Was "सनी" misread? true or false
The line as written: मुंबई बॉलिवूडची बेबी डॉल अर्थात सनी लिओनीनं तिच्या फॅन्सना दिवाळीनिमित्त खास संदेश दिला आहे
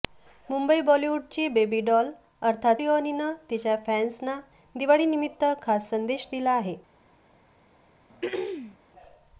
true